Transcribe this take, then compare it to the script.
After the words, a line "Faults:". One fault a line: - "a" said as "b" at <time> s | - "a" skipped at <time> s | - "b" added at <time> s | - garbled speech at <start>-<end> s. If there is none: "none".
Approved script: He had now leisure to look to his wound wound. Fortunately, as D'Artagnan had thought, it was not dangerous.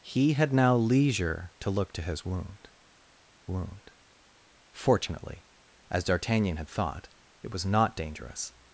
He had now leisure to look to his wound wound. Fortunately, as D'Artagnan had thought, it was not dangerous.
Faults:
none